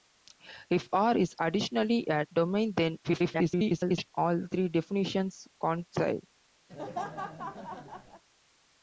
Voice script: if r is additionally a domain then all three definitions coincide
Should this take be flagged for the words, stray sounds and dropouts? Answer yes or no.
yes